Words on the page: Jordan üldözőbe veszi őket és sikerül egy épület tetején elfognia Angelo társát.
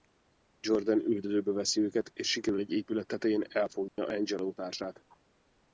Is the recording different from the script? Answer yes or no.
no